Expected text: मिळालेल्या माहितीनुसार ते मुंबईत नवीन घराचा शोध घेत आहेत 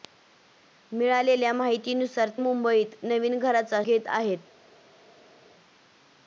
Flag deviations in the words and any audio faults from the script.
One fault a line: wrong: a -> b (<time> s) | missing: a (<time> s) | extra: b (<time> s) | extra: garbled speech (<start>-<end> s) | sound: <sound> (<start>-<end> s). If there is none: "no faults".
missing: ते (2.3 s)
missing: शोध (3.8 s)